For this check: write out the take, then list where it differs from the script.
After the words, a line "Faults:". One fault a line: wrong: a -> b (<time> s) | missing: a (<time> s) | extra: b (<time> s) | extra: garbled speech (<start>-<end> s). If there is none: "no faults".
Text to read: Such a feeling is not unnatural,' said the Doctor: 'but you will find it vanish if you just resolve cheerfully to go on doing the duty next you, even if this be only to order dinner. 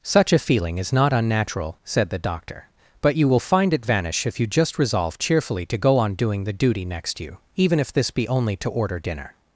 Such a feeling is not unnatural,' said the Doctor: 'but you will find it vanish if you just resolve cheerfully to go on doing the duty next you, even if this be only to order dinner.
Faults:
no faults